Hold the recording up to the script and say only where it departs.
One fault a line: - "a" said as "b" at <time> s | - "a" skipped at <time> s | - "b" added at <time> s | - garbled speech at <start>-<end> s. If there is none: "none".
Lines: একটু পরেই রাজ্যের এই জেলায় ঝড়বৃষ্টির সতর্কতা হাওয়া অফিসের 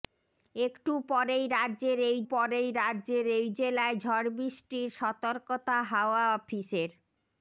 - "পরেই রাজ্যের এই" added at 2.3 s